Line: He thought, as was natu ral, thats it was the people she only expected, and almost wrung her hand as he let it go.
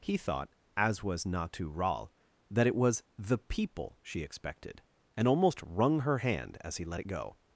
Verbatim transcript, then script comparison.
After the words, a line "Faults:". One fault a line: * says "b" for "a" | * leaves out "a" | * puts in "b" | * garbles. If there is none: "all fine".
He thought, as was natu ral, that it was the people she expected, and almost wrung her hand as he let it go.
Faults:
* says "that" for "thats"
* leaves out "only"